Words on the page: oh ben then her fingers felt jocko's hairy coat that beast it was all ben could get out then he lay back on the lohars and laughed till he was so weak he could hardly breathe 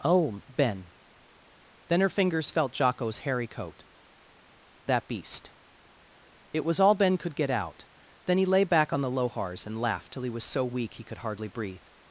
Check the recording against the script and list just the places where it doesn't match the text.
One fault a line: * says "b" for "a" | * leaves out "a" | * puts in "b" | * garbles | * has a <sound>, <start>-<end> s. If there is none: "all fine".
all fine